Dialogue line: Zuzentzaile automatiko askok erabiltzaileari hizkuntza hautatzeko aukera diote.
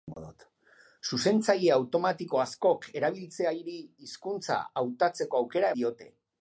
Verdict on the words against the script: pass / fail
pass